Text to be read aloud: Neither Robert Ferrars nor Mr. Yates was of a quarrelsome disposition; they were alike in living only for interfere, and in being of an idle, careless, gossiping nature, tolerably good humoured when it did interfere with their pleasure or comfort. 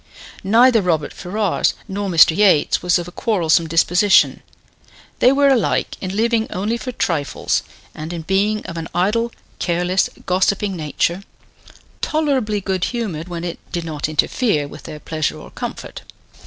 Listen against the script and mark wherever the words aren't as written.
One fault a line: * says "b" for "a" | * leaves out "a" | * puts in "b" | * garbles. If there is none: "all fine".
* says "trifles" for "interfere"
* puts in "not"